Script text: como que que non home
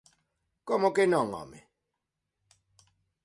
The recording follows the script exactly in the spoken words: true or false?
false